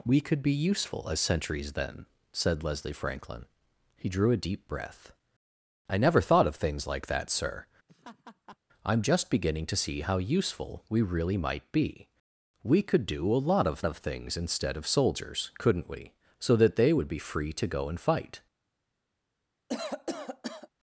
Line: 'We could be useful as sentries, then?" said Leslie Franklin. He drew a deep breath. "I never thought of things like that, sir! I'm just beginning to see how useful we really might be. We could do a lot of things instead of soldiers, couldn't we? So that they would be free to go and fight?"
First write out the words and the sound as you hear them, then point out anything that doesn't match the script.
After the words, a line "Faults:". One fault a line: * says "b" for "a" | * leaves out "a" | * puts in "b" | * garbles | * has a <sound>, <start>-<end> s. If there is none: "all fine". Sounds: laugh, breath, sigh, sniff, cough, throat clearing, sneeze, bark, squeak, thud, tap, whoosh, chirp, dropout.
'We could be useful as sentries, then?" said Leslie Franklin. He drew a deep breath. "I never thought of things like that, sir! I'm just beginning to see how useful we really might be. We could do a lot of of things instead of soldiers, couldn't we? So that they would be free to go and fight?"
Faults:
* has a laugh, 7.9-8.6 s
* puts in "of"
* has a cough, 19.7-20.7 s